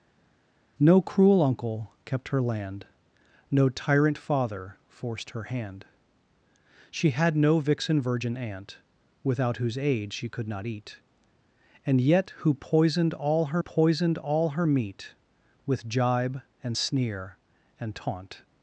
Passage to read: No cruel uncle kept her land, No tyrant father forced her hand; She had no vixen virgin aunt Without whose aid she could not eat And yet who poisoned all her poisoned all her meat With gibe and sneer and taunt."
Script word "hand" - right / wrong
right